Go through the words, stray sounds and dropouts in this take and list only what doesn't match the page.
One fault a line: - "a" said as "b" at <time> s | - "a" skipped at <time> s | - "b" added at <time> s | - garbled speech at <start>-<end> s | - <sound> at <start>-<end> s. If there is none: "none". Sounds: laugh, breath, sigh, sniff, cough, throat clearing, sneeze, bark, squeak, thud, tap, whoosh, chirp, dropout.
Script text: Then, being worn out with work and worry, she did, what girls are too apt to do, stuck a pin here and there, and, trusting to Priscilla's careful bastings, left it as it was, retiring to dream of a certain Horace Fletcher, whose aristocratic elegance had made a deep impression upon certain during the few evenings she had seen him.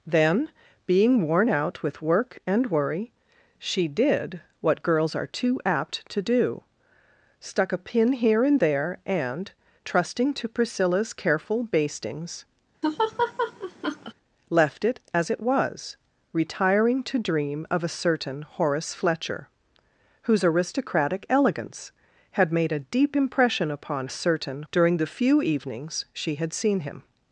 - laugh at 12.8-14.1 s